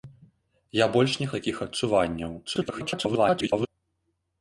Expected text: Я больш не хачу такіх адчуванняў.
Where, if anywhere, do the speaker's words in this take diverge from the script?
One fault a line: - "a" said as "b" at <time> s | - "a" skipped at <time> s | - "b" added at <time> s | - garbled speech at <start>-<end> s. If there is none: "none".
- "хачу" skipped at 1.3 s
- garbled speech at 2.5-3.7 s